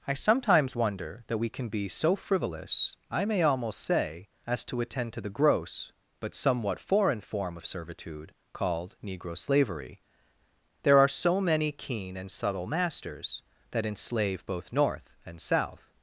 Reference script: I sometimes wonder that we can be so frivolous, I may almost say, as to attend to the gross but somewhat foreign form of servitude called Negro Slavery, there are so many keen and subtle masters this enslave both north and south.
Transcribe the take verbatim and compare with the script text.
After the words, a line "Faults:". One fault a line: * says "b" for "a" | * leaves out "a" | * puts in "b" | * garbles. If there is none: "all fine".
I sometimes wonder that we can be so frivolous, I may almost say, as to attend to the gross but somewhat foreign form of servitude called Negro Slavery, there are so many keen and subtle masters that enslave both north and south.
Faults:
* says "that" for "this"